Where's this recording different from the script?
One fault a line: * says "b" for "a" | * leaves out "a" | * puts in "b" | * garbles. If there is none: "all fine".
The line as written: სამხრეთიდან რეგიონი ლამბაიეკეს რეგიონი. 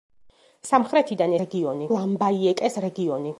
all fine